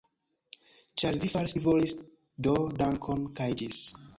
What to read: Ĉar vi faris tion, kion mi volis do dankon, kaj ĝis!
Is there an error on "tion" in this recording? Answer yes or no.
yes